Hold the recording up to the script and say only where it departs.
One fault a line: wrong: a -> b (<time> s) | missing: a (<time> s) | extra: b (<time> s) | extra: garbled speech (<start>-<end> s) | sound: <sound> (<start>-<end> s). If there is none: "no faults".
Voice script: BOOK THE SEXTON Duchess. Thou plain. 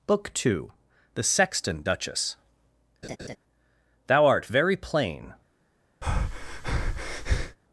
extra: two (0.3 s)
sound: laugh (3.0-3.4 s)
extra: art very (4.3 s)
sound: breath (6.0-7.6 s)